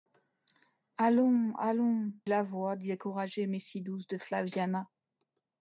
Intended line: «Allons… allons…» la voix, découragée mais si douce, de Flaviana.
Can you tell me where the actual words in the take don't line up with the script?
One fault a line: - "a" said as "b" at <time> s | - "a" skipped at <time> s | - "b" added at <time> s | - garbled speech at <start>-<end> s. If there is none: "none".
none